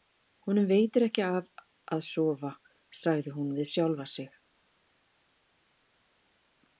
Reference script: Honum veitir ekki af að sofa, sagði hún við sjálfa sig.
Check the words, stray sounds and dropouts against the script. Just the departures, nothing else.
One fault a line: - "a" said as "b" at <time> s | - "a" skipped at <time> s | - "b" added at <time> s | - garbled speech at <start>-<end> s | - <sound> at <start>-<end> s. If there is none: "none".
none